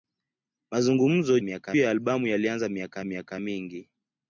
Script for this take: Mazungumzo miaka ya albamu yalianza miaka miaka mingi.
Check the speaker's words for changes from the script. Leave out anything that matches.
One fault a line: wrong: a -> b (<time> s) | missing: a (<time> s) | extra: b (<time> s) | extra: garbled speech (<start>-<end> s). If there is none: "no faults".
no faults